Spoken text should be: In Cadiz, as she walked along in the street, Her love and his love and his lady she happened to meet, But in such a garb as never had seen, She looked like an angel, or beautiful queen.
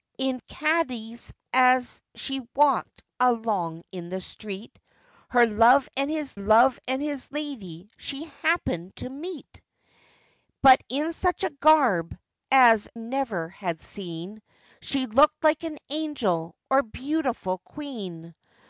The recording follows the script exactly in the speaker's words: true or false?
true